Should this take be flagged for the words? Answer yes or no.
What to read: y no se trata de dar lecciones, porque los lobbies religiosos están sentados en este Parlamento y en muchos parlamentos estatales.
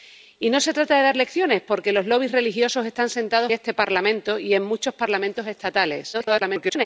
yes